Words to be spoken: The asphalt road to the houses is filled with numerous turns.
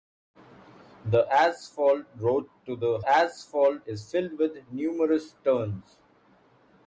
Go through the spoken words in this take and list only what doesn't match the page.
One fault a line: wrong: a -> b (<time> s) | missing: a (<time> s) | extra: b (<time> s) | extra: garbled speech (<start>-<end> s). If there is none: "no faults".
wrong: houses -> asphalt (3.1 s)